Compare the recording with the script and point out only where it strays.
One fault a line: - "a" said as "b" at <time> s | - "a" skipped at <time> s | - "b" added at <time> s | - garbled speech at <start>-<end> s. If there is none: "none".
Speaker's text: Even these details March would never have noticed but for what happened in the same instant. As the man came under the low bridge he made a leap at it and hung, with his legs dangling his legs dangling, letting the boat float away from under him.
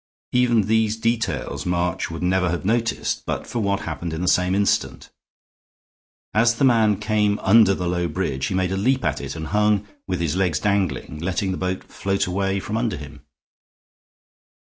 - "his legs dangling" skipped at 11.2 s